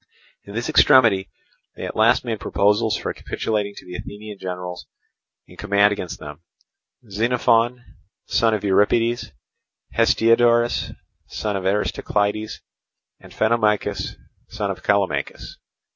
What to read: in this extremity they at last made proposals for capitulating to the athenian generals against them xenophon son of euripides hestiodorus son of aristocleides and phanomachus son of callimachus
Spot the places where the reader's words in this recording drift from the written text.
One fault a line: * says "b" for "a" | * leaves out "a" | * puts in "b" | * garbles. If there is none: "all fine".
* puts in "in command"